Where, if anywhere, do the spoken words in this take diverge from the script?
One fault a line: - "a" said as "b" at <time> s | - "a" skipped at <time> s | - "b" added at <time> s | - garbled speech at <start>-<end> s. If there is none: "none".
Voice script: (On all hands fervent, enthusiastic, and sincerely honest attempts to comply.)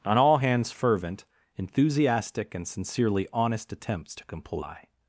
none